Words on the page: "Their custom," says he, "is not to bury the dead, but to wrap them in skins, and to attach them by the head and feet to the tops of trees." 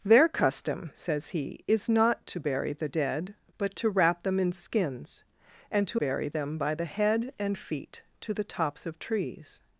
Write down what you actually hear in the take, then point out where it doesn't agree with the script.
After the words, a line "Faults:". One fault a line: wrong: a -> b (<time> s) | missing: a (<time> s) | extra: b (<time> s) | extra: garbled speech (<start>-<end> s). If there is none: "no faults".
"Their custom," says he, "is not to bury the dead, but to wrap them in skins, and to bury them by the head and feet to the tops of trees."
Faults:
wrong: attach -> bury (5.9 s)